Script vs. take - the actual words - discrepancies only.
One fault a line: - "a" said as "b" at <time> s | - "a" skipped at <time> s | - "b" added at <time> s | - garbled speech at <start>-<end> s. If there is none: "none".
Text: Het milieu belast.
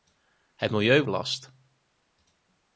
none